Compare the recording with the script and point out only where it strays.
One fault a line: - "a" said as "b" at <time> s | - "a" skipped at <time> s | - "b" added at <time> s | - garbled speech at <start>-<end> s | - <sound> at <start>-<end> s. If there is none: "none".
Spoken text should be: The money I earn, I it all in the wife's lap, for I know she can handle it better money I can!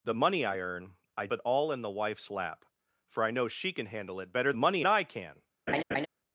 - laugh at 5.7-6.1 s